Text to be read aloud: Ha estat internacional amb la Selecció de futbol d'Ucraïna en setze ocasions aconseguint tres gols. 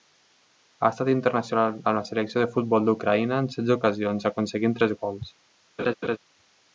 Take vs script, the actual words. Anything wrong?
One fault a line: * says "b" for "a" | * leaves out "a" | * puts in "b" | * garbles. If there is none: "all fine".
all fine